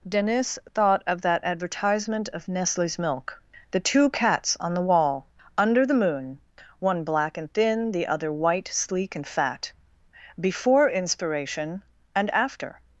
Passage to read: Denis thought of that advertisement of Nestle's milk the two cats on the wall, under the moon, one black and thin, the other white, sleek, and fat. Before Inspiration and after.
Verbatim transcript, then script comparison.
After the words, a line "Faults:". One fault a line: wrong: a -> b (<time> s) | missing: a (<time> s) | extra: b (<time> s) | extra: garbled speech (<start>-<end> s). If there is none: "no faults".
Denis thought of that advertisement of Nestle's milk the two cats on the wall, under the moon, one black and thin, the other white, sleek, and fat. Before Inspiration and after.
Faults:
no faults